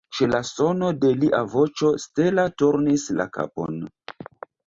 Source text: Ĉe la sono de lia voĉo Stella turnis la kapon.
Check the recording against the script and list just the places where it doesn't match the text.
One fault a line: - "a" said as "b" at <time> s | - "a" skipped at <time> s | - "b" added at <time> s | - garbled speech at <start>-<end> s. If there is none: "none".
none